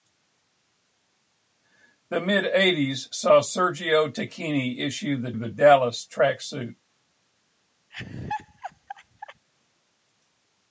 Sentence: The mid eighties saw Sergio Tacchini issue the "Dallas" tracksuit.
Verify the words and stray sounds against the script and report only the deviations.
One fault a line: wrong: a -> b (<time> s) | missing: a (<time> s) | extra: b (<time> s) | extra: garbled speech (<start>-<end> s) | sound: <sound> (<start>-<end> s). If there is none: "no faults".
extra: the (5.3 s)
sound: laugh (7.9-9.5 s)